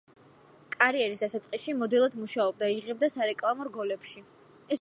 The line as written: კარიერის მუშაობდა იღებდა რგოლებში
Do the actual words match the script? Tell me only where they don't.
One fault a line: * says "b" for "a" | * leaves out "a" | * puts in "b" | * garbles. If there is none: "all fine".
* puts in "დასაწყისში მოდელად"
* puts in "სარეკლამო"